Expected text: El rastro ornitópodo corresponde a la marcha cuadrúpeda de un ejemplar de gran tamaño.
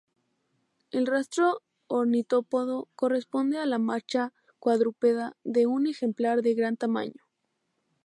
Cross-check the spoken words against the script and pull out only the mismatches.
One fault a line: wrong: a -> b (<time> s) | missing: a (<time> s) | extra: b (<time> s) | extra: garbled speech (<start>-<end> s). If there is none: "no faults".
no faults